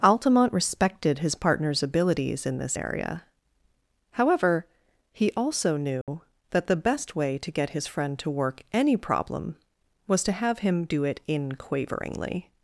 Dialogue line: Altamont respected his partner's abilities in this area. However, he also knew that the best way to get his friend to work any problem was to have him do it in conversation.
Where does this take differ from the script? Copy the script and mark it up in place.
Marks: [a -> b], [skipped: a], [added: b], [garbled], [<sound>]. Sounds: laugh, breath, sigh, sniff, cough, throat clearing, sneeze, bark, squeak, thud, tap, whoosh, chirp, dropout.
Altamont respected his partner's abilities in this area. However, he also knew [dropout] that the best way to get his friend to work any problem was to have him do it in [conversation. -> quaveringly]